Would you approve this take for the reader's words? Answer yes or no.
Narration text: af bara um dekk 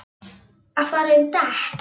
yes